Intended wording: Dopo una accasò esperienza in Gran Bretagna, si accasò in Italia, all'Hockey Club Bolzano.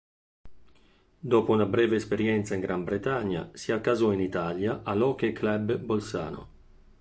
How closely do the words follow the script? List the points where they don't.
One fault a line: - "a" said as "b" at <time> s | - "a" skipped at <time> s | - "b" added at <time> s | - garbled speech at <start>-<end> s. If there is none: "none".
- "accasò" said as "breve" at 1.7 s